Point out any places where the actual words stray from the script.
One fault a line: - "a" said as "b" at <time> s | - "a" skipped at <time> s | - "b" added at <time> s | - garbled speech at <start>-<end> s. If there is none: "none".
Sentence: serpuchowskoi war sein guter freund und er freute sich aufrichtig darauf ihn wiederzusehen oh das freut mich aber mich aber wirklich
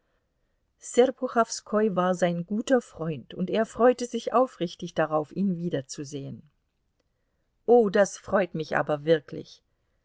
- "mich aber" skipped at 9.0 s